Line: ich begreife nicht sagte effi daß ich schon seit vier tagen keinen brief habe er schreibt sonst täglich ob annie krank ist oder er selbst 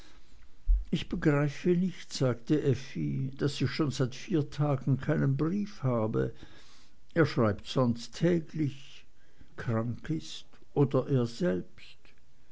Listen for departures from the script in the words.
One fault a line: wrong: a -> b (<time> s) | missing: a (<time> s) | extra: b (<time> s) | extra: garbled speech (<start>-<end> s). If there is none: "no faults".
missing: ob annie (9.1 s)